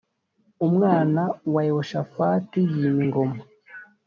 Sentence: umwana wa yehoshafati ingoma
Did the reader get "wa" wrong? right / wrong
right